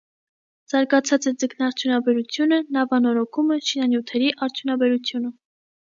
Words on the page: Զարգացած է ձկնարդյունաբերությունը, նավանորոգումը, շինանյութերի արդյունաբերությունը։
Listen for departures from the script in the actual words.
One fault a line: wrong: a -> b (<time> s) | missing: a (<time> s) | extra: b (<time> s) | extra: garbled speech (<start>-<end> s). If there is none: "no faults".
no faults